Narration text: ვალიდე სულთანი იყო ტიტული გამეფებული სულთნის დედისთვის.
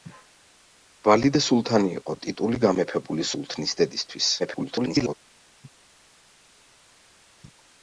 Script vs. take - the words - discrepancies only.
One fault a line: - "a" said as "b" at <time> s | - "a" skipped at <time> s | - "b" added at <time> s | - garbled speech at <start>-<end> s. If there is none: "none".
- garbled speech at 4.4-5.1 s